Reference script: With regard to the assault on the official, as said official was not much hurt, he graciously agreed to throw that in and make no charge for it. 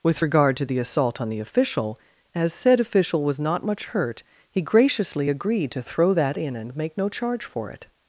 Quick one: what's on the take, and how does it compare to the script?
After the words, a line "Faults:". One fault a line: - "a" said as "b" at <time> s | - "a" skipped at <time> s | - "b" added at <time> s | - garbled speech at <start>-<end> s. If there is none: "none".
With regard to the assault on the official, as said official was not much hurt, he graciously agreed to throw that in and make no charge for it.
Faults:
none